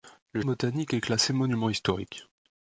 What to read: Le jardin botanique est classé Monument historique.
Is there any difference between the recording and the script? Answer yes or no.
yes